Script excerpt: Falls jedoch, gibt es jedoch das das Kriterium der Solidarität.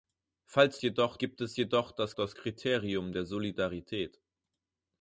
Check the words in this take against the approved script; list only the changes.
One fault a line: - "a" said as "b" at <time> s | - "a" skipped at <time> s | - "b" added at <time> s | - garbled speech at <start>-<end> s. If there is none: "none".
none